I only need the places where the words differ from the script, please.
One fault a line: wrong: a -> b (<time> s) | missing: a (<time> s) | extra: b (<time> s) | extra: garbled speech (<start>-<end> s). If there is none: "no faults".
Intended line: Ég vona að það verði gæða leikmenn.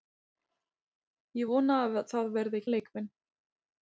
missing: gæða (2.7 s)